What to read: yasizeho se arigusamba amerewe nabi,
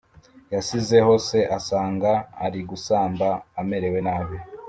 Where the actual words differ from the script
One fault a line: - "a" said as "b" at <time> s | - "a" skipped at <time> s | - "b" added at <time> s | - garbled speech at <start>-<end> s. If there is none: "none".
- "asanga" added at 1.6 s